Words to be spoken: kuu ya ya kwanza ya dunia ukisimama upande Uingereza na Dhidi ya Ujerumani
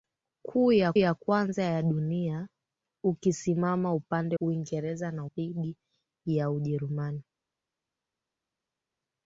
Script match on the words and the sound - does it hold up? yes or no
yes